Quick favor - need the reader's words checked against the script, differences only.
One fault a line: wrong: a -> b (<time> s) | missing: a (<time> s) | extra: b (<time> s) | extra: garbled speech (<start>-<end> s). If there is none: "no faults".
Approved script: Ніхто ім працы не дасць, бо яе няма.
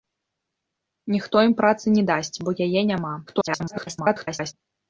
extra: garbled speech (3.3-4.5 s)